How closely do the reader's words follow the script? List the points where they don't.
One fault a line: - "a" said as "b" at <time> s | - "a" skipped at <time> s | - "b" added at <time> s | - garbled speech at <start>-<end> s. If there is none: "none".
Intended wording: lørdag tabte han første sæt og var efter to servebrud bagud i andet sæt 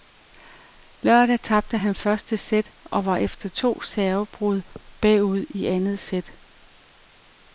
none